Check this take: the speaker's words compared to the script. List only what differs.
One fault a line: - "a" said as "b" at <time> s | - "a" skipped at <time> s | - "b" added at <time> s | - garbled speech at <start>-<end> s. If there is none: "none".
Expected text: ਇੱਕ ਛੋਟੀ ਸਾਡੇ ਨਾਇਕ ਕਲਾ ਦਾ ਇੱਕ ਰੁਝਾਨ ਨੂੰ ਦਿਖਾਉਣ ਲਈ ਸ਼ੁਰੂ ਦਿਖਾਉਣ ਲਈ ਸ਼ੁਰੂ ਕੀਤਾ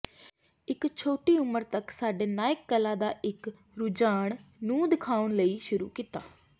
- "ਉਮਰ ਤੱਕ" added at 1.4 s
- "ਦਿਖਾਉਣ ਲਈ ਸ਼ੁਰੂ" skipped at 5.9 s